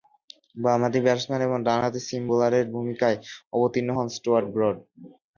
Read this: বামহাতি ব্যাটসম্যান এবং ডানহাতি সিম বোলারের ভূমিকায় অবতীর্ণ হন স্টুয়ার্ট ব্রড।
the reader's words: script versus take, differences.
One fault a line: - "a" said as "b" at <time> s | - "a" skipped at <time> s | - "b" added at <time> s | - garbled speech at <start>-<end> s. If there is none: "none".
none